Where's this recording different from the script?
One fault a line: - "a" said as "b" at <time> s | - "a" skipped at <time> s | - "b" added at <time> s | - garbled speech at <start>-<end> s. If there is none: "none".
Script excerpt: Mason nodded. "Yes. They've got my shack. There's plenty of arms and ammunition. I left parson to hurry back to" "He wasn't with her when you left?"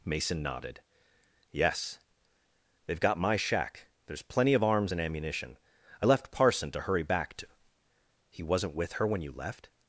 none